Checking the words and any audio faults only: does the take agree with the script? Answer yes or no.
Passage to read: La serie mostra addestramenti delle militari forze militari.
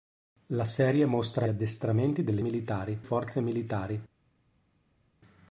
yes